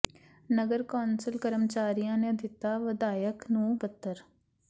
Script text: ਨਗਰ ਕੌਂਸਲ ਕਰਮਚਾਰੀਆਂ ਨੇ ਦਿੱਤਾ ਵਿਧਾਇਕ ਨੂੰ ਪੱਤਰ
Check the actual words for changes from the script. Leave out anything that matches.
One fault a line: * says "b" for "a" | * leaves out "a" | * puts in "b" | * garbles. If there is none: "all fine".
all fine